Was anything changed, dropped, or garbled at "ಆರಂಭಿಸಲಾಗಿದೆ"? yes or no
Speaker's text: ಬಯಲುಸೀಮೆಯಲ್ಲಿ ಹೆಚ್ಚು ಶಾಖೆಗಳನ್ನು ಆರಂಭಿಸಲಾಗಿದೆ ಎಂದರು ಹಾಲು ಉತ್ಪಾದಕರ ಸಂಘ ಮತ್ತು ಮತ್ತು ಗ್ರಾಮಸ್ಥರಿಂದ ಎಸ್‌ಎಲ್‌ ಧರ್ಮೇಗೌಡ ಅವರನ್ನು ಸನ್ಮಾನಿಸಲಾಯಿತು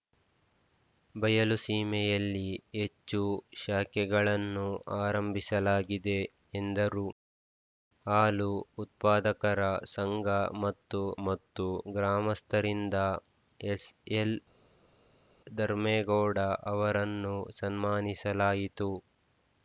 no